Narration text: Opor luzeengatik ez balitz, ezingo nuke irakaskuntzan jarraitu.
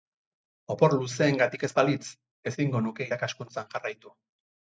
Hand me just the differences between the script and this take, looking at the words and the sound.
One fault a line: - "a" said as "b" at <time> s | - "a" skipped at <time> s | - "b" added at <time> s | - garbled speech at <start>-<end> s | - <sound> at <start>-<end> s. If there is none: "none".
none